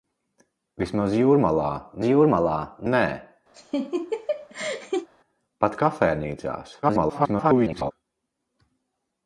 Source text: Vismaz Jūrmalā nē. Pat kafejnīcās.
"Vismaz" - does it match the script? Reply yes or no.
yes